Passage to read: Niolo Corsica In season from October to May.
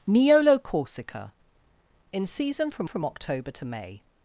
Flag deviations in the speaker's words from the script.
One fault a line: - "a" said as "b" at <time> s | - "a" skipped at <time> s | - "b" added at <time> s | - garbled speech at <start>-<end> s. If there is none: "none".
- "from" added at 2.9 s